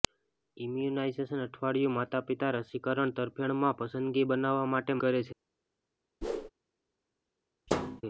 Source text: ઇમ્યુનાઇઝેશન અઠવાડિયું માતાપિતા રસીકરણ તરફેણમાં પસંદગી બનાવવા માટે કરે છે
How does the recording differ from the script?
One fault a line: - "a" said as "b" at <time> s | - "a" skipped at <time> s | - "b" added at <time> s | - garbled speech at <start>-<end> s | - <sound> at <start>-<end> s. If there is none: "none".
- whoosh at 6.2-6.5 s
- thud at 7.7-8.0 s